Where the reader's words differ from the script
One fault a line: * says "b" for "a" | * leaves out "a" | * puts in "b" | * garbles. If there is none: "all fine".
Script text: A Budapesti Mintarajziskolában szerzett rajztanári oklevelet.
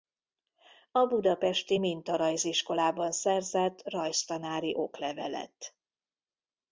all fine